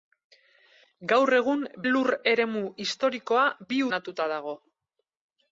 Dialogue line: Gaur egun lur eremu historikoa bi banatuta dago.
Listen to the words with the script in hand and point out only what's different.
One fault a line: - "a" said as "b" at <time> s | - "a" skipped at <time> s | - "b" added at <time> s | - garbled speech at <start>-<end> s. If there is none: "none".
none